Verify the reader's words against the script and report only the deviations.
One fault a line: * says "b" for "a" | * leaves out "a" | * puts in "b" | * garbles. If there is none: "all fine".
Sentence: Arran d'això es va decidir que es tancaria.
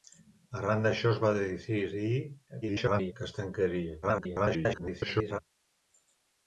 * garbles
* garbles